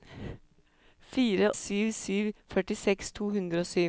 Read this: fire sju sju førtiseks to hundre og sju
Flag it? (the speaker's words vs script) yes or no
no